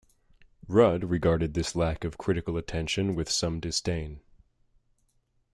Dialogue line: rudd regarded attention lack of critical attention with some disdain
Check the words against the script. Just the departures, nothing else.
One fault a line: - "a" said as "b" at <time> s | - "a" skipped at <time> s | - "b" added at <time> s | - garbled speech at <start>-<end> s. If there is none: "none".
- "attention" said as "this" at 1.5 s